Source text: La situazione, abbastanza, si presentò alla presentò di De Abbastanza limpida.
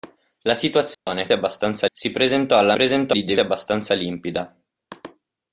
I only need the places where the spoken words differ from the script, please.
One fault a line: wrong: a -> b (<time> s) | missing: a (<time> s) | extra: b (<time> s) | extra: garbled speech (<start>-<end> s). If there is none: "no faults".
no faults